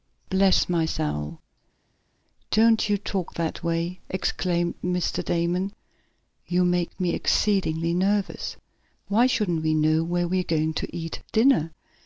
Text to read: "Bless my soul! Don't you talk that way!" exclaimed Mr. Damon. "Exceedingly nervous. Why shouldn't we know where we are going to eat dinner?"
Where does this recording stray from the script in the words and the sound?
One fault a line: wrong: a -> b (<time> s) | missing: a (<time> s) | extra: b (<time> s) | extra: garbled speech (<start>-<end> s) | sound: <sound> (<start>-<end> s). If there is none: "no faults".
extra: You make me (6.4 s)